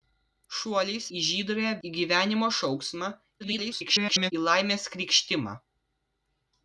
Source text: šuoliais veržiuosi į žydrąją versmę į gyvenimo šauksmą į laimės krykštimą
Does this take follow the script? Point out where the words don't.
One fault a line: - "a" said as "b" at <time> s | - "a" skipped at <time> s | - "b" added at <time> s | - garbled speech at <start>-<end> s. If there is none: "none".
- "veržiuosi" skipped at 1.1 s
- "versmę" skipped at 1.7 s
- garbled speech at 3.4-4.3 s